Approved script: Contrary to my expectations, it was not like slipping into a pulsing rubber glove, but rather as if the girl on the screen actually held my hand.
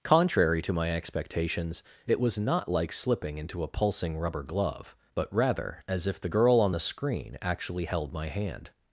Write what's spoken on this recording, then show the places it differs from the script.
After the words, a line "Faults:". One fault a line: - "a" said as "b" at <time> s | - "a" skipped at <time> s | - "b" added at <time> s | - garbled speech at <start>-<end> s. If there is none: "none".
Contrary to my expectations, it was not like slipping into a pulsing rubber glove, but rather as if the girl on the screen actually held my hand.
Faults:
none